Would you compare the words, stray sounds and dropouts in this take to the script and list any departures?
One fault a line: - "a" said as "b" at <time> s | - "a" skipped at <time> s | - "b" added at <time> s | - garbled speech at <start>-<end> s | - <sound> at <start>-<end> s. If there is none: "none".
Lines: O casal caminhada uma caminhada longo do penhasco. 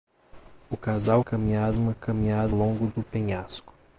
none